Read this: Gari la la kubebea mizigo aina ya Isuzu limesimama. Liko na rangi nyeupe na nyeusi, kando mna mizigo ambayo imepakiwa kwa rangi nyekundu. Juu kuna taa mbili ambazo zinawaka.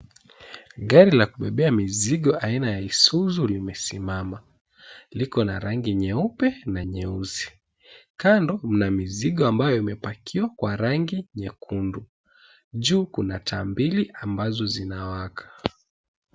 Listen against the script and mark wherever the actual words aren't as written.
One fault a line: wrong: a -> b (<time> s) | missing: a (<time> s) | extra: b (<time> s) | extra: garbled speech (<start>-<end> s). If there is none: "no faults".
missing: la (1.2 s)